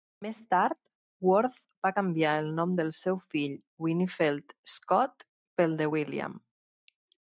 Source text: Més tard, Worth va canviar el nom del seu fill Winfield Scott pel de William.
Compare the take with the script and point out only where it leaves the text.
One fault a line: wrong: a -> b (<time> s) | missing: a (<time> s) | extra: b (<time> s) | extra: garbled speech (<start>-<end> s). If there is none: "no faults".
no faults